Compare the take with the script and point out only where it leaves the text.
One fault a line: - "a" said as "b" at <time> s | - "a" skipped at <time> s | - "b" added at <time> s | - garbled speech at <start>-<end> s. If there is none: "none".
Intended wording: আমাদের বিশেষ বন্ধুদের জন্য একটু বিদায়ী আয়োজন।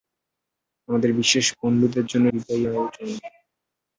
- "একটু" skipped at 2.2 s